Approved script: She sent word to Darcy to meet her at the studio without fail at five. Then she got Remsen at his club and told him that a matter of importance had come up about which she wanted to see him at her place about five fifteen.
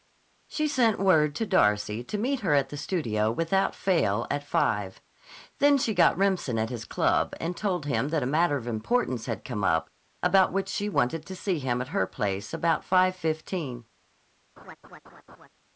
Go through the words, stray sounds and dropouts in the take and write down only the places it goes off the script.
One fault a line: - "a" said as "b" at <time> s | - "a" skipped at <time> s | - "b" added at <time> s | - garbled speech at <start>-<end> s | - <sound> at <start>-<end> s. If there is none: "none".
- laugh at 14.6-15.5 s